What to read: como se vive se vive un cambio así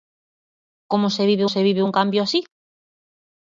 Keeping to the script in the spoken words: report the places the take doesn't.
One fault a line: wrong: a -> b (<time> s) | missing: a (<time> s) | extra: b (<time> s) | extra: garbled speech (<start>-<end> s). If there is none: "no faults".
no faults